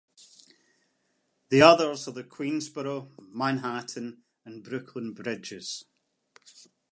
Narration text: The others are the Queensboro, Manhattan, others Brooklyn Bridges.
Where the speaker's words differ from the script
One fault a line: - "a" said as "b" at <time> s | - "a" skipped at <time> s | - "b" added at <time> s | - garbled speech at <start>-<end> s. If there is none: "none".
- "others" said as "and" at 4.5 s